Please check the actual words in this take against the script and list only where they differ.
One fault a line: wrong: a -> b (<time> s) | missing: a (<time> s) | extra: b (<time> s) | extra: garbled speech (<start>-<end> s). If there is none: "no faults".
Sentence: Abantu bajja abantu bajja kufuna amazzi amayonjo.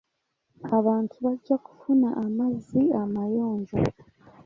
missing: abantu bajja (1.6 s)